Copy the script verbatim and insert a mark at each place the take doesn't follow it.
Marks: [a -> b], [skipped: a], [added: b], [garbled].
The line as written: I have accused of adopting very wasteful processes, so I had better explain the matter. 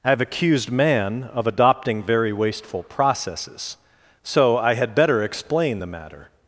I have accused [added: man] of adopting very wasteful processes, so I had better explain the matter.